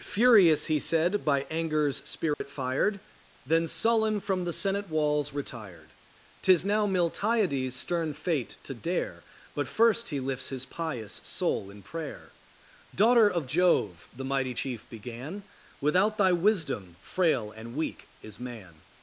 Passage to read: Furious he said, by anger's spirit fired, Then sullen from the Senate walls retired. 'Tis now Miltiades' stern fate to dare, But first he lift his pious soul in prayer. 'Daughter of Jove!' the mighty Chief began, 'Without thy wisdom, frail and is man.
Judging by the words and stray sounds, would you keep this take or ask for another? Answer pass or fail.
fail